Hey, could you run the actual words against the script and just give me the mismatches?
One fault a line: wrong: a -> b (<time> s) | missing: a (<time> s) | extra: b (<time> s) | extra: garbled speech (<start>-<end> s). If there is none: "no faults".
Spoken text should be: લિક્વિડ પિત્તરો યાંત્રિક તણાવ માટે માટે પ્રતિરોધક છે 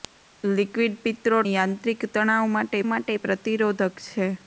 no faults